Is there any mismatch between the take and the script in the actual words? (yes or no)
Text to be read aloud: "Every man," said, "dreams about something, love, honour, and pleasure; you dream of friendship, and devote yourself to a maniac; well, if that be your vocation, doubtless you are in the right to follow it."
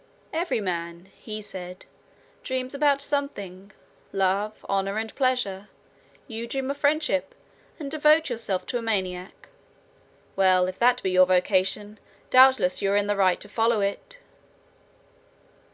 yes